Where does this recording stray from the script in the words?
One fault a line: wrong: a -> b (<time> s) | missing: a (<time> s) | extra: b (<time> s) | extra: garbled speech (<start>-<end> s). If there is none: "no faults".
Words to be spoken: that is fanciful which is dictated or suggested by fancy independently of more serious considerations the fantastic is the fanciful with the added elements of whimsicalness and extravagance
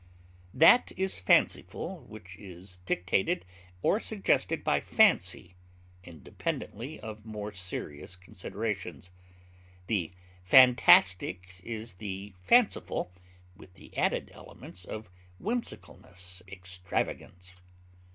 missing: and (16.4 s)